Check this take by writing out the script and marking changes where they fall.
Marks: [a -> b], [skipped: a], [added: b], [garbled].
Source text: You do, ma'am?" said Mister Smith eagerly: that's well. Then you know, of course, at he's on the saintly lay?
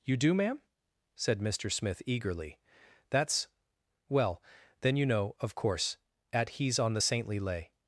You do, ma'am?" said Mister Smith eagerly: that's well. Then you know, of course, at he's on the saintly lay?